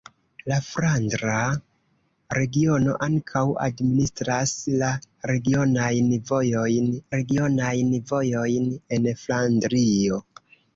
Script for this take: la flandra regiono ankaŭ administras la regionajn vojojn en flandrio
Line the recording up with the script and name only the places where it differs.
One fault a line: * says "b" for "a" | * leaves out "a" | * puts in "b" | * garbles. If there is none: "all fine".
* puts in "regionajn vojojn"